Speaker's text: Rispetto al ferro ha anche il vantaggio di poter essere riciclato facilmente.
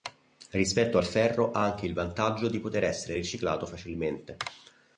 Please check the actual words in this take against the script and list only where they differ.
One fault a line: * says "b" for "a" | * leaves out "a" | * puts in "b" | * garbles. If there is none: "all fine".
all fine